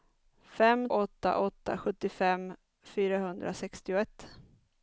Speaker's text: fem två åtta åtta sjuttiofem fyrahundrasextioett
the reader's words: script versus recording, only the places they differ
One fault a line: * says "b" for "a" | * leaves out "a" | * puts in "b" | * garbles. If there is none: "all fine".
* leaves out "två"